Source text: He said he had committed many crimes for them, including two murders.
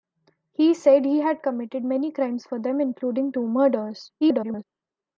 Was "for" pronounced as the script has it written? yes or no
yes